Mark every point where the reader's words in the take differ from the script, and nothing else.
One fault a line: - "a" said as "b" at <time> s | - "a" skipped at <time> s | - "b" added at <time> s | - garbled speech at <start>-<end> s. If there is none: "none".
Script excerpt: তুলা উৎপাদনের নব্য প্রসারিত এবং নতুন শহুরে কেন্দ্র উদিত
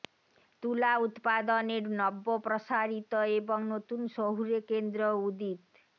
none